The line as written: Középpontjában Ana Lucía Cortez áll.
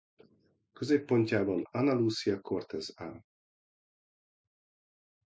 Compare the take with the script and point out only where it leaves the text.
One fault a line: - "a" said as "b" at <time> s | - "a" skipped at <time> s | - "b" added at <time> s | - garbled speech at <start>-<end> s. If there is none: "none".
none